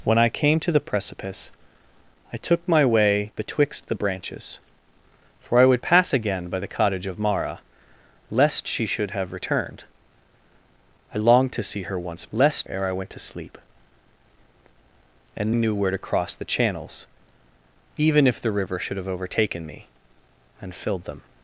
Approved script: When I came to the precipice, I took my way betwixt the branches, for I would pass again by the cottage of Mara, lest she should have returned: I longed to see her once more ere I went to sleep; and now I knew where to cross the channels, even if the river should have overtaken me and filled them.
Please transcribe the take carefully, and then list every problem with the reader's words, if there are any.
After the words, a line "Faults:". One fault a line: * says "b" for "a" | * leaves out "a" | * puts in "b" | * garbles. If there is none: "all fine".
When I came to the precipice, I took my way betwixt the branches, for I would pass again by the cottage of Mara, lest she should have returned: I longed to see her once lest ere I went to sleep; and knew where to cross the channels, even if the river should have overtaken me and filled them.
Faults:
* says "lest" for "more"
* leaves out "now I"